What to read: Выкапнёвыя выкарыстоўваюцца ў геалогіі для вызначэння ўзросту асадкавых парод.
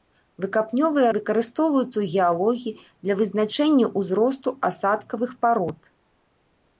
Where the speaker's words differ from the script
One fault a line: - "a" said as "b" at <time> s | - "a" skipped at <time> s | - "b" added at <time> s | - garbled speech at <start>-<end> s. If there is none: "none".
none